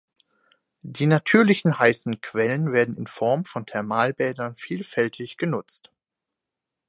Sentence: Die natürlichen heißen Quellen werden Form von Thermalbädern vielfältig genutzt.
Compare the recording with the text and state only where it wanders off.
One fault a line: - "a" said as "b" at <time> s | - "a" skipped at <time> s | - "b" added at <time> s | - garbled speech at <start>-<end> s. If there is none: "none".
- "in" added at 2.9 s